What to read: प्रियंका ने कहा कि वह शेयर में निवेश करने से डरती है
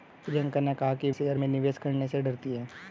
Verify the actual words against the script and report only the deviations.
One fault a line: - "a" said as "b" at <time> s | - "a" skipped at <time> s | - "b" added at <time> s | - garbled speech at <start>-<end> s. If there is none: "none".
- "वह" skipped at 1.1 s